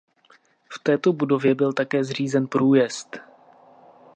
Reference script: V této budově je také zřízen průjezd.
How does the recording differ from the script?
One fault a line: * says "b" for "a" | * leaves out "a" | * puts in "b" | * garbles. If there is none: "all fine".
* says "byl" for "je"